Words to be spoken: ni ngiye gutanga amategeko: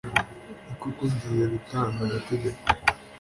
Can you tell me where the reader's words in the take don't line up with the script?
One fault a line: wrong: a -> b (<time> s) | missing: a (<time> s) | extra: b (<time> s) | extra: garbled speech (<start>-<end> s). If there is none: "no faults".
extra: koko (0.8 s)